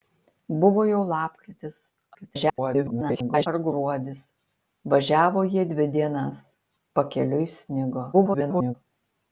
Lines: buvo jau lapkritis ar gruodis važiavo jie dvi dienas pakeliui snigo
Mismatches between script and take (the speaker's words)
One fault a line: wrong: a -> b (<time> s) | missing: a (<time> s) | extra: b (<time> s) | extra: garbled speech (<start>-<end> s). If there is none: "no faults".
extra: garbled speech (2.1-3.5 s)
extra: garbled speech (8.1-8.7 s)